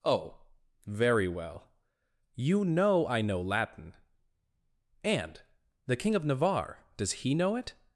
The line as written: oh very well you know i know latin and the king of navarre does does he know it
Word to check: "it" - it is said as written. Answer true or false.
true